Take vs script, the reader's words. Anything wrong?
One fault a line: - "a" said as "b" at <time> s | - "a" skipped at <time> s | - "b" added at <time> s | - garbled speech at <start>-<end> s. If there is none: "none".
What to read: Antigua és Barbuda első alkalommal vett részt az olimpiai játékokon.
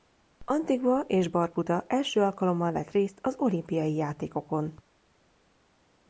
none